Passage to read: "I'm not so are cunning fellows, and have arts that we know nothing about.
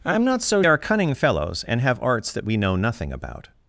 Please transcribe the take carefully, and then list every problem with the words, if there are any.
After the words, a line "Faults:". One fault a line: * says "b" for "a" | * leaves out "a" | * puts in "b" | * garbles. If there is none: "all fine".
"I'm not so are cunning fellows, and have arts that we know nothing about.
Faults:
all fine